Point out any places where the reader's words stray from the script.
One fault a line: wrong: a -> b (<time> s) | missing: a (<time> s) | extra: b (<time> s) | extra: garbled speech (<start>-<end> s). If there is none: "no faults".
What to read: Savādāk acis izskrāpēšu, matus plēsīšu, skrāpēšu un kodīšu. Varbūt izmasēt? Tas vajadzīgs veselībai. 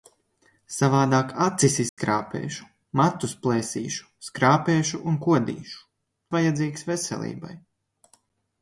missing: Varbūt izmasēt Tas (5.8 s)